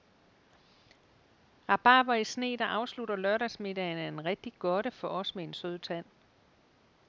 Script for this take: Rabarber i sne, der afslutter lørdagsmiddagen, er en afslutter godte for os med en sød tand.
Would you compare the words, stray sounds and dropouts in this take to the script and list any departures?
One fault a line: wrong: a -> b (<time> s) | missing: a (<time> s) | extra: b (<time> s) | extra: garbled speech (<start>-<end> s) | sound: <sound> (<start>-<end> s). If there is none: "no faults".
wrong: afslutter -> rigtig (4.2 s)